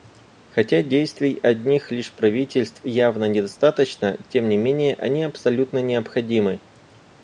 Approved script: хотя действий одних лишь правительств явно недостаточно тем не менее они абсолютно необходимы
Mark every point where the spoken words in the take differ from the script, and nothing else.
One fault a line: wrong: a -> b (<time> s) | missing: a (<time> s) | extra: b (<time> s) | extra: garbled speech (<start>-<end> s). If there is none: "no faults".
no faults